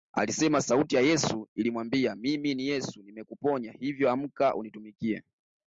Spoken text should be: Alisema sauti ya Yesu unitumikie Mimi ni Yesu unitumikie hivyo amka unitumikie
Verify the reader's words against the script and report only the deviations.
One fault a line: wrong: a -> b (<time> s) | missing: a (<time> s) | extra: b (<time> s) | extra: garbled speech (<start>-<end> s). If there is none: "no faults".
wrong: unitumikie -> ilimwambia (1.6 s)
wrong: unitumikie -> nimekuponya (3.0 s)